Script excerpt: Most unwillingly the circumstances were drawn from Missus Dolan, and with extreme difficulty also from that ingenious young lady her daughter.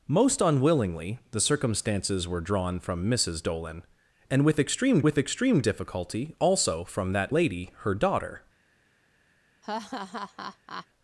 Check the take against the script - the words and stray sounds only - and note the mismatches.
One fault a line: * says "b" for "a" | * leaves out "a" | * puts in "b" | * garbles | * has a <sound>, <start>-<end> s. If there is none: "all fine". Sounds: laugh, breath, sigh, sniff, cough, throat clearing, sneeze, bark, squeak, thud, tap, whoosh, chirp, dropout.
* puts in "with extreme"
* leaves out "ingenious young"
* has a laugh, 9.6-10.9 s